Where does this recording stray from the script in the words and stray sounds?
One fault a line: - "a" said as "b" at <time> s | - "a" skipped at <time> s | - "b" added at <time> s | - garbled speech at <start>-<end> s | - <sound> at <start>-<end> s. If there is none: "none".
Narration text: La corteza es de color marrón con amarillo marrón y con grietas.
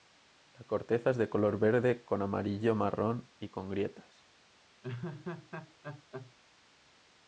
- "marrón" said as "verde" at 1.6 s
- laugh at 4.8-6.3 s